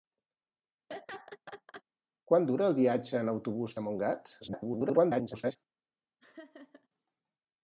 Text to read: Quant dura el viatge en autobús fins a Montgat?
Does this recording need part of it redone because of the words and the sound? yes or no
yes